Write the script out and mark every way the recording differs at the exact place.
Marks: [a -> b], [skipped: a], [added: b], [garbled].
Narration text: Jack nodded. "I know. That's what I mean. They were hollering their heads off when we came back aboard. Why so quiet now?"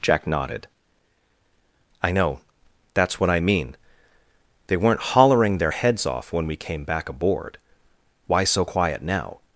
Jack nodded. "I know. That's what I mean. They [were -> weren't] hollering their heads off when we came back aboard. Why so quiet now?"